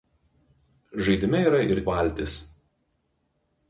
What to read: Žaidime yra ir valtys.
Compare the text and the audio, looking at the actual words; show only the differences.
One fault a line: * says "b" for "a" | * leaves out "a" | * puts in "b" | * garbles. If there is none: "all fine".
all fine